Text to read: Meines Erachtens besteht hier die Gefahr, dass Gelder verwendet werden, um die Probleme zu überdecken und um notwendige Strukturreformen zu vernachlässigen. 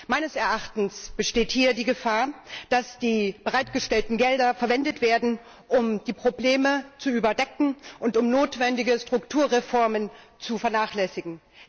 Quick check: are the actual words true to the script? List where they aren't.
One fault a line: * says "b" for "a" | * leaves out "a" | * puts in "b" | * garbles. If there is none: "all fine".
* puts in "die bereitgestellten"